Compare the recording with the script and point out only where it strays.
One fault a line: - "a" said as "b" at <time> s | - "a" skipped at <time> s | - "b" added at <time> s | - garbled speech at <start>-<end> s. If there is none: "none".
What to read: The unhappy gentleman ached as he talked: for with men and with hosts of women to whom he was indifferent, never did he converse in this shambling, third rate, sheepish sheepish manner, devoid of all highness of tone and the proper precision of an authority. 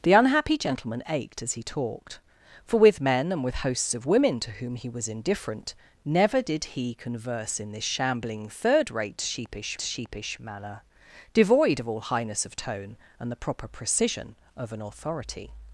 none